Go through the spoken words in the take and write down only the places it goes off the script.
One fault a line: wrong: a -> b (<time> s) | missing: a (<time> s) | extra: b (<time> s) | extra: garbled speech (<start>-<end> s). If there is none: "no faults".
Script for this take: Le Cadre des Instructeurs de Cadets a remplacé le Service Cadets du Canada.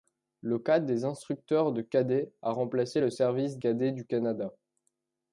no faults